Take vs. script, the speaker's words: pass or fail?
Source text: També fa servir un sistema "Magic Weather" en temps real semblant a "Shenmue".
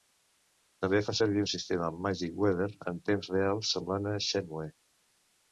pass